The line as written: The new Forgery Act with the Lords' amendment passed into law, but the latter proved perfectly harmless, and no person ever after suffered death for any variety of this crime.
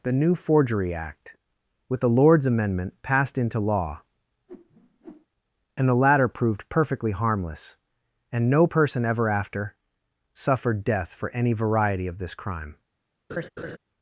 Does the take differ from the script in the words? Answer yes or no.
yes